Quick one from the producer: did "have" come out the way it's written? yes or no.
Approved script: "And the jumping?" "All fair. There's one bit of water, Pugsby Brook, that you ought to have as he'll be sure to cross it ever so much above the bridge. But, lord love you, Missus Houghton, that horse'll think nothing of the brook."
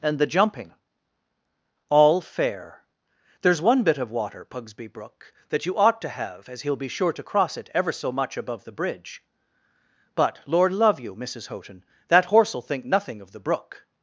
yes